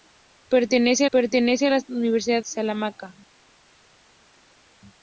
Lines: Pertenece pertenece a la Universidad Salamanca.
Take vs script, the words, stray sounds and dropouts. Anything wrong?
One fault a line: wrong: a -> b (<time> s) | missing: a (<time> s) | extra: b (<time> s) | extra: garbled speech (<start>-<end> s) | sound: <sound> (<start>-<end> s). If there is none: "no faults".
no faults